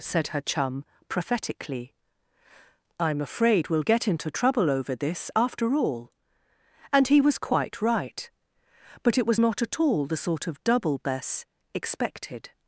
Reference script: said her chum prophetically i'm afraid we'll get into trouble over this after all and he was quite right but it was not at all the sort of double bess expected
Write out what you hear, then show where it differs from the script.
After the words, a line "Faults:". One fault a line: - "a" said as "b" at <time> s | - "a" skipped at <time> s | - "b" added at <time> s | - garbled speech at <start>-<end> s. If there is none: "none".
said her chum prophetically i'm afraid we'll get into trouble over this after all and he was quite right but it was not at all the sort of double bess expected
Faults:
none